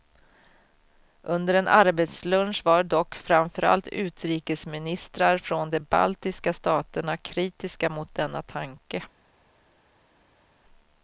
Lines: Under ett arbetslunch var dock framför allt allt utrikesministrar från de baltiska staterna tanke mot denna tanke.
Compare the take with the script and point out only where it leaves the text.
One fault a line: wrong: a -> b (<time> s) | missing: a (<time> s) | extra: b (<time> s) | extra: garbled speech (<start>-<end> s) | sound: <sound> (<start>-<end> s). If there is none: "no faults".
wrong: ett -> en (1.5 s)
missing: allt (3.9 s)
wrong: tanke -> kritiska (7.2 s)